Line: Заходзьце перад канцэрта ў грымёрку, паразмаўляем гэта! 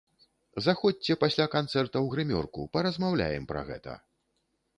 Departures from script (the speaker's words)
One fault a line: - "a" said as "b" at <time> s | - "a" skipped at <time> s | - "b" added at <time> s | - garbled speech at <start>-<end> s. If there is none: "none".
- "перад" said as "пасля" at 1.2 s
- "пра" added at 3.5 s